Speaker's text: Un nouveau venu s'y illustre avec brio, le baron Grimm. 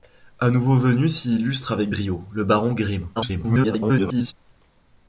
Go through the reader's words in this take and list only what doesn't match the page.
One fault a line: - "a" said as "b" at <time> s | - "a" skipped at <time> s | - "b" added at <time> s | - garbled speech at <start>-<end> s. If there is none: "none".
- garbled speech at 3.2-4.3 s